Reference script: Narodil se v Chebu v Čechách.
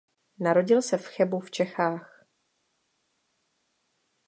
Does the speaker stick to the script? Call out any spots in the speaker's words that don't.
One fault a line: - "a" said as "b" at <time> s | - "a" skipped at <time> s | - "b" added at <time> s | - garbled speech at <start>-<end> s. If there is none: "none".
none